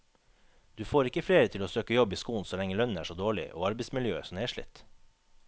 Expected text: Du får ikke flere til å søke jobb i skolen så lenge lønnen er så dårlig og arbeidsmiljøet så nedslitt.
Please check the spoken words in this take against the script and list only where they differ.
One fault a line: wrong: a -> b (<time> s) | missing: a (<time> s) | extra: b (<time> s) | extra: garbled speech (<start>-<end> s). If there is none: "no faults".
no faults